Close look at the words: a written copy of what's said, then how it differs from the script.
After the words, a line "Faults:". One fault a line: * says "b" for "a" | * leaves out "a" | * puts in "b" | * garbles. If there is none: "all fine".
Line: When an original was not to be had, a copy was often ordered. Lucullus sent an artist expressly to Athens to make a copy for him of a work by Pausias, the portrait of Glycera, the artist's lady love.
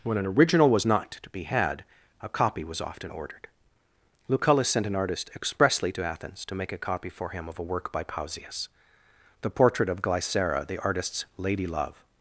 When an original was not to be had, a copy was often ordered. Lucullus sent an artist expressly to Athens to make a copy for him of a work by Pausias, the portrait of Glycera, the artist's lady love.
Faults:
all fine